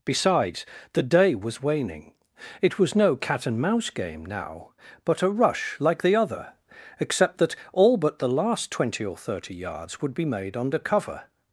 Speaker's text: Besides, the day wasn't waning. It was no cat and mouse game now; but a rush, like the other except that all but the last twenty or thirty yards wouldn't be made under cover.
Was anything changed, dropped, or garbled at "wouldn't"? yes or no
yes